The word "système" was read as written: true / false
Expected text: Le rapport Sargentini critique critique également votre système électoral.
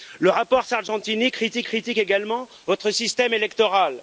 true